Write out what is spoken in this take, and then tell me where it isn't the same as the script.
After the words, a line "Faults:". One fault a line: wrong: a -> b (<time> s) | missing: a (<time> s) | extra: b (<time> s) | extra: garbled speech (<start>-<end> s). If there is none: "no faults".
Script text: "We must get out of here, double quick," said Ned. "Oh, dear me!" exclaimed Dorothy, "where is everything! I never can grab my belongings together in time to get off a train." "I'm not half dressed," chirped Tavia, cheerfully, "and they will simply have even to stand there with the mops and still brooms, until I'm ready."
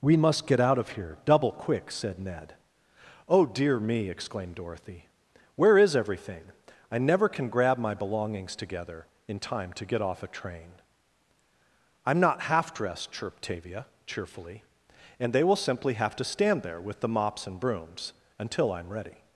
"We must get out of here, double quick," said Ned. "Oh, dear me!" exclaimed Dorothy, "where is everything! I never can grab my belongings together in time to get off a train." "I'm not half dressed," chirped Tavia, cheerfully, "and they will simply have to stand there with the mops and brooms, until I'm ready."
Faults:
missing: even (16.1 s)
missing: still (17.6 s)